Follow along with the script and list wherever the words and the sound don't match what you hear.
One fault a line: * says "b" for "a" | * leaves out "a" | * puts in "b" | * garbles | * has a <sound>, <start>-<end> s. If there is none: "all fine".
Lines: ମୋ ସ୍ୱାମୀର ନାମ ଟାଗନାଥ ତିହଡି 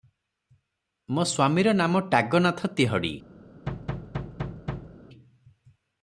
* has a thud, 3.7-5.0 s